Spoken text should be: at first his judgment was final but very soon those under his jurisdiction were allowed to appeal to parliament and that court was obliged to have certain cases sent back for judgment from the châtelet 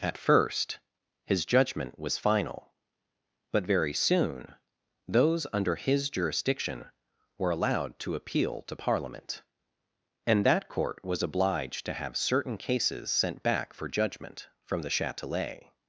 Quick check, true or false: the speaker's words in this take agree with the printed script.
true